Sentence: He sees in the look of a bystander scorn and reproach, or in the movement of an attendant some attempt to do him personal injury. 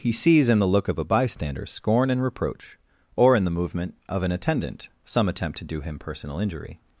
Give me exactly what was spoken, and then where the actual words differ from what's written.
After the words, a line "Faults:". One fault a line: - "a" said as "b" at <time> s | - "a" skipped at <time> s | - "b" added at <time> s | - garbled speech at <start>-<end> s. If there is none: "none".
He sees in the look of a bystander scorn and reproach, or in the movement of an attendant some attempt to do him personal injury.
Faults:
none